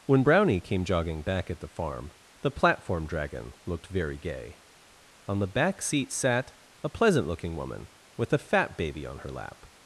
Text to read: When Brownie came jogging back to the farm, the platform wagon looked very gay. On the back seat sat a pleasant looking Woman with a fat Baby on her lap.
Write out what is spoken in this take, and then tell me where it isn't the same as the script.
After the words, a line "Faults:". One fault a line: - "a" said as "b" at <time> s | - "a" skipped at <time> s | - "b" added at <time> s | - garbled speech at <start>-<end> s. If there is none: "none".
When Brownie came jogging back at the farm, the platform dragon looked very gay. On the back seat sat a pleasant looking Woman with a fat Baby on her lap.
Faults:
- "to" said as "at" at 1.5 s
- "wagon" said as "dragon" at 3.0 s